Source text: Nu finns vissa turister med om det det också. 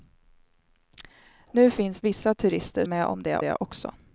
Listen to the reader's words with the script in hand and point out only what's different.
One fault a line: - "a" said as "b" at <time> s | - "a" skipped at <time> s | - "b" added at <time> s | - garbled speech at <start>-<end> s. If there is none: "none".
none